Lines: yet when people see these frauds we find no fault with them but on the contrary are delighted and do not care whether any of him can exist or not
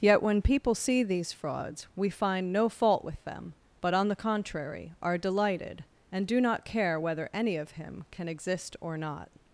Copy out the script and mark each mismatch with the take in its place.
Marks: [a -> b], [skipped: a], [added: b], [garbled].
yet when people see these frauds we find no fault with them but on the contrary are delighted and do not care whether any of him can exist or not